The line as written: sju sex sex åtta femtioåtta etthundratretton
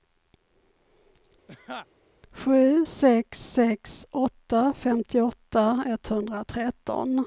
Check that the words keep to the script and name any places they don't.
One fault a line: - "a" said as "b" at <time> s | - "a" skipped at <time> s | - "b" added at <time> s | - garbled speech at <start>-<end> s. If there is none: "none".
none